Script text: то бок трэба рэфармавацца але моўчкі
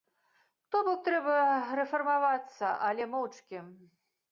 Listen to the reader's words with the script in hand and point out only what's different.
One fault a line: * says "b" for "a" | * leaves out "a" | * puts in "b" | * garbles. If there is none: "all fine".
all fine